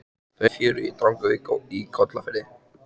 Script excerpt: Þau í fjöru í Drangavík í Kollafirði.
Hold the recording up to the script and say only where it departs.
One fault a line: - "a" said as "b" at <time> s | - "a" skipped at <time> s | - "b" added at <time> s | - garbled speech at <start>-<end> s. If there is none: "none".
none